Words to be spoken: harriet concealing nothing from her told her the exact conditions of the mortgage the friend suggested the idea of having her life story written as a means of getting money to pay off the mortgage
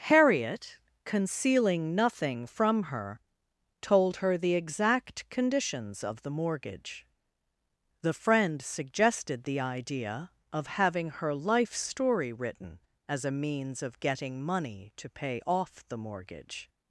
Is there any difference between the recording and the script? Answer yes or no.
no